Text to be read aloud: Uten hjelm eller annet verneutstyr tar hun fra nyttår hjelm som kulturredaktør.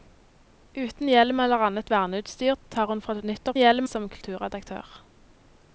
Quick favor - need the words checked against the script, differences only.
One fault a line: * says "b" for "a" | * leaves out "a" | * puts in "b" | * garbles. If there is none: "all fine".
all fine